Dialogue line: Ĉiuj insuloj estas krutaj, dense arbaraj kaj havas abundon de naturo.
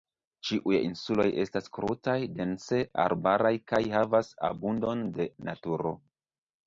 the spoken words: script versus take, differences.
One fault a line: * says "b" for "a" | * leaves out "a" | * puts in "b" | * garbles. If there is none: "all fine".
all fine